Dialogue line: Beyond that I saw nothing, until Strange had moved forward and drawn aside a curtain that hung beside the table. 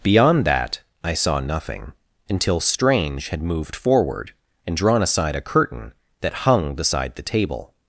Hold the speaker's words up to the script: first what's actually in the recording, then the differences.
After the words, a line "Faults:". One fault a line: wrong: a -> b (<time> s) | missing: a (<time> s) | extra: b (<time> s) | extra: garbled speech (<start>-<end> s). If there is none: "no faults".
Beyond that I saw nothing, until Strange had moved forward and drawn aside a curtain that hung beside the table.
Faults:
no faults